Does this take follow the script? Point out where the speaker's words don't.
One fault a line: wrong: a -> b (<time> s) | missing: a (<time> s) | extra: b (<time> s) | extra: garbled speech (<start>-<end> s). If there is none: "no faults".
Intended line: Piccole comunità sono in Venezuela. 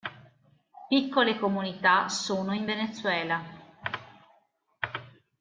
no faults